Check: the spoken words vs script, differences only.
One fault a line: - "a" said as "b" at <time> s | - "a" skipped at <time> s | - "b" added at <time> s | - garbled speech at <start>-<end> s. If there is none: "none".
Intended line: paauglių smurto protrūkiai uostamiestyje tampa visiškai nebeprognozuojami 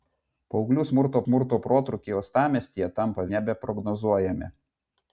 - "smurto" added at 1.2 s
- "visiškai" skipped at 3.3 s